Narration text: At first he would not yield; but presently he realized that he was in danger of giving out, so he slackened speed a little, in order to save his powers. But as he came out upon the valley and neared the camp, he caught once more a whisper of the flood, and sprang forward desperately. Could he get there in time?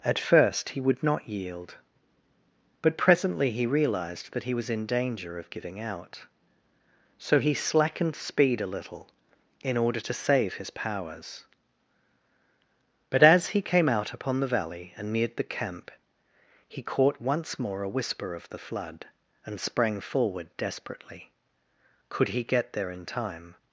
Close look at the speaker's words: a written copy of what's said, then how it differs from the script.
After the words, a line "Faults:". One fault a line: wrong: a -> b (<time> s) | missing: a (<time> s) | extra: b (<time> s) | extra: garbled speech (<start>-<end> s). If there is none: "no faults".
At first he would not yield; but presently he realized that he was in danger of giving out, so he slackened speed a little, in order to save his powers. But as he came out upon the valley and neared the camp, he caught once more a whisper of the flood, and sprang forward desperately. Could he get there in time?
Faults:
no faults